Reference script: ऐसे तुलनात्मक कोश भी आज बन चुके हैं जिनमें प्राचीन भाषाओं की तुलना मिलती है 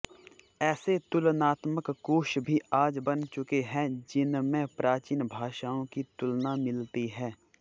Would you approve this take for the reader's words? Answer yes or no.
yes